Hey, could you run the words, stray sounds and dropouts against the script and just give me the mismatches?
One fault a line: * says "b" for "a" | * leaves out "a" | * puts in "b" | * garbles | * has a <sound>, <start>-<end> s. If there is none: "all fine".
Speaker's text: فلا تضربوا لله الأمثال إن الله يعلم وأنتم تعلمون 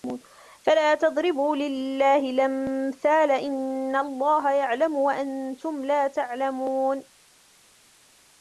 * puts in "لا"